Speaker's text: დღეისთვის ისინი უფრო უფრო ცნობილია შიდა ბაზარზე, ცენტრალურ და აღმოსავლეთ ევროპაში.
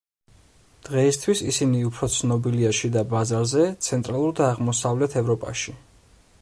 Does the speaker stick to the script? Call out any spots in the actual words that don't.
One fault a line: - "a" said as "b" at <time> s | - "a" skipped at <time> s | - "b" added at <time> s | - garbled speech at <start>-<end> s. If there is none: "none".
- "უფრო" skipped at 2.1 s